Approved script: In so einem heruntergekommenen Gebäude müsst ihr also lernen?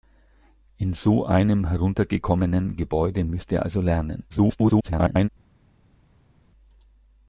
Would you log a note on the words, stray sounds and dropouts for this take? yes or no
yes